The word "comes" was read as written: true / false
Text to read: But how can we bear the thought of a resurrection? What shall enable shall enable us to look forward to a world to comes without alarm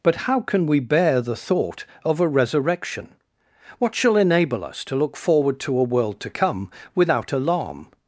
false